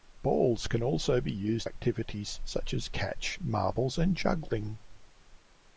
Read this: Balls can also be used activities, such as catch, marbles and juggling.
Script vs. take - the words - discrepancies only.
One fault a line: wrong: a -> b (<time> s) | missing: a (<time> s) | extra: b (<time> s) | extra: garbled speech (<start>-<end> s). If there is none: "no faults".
no faults